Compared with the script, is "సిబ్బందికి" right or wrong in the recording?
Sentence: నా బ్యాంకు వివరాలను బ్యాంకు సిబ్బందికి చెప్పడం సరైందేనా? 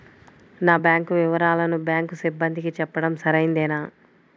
right